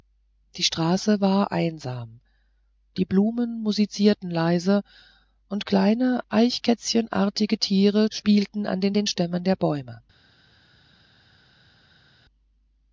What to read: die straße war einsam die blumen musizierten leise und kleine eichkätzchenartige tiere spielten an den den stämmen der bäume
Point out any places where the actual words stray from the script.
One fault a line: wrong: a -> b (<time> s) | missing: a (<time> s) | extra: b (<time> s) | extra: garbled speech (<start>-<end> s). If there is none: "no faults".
no faults